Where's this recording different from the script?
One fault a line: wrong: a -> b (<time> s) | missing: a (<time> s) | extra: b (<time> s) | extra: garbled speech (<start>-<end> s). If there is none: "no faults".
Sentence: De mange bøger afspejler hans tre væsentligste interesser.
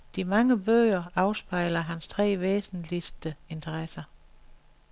no faults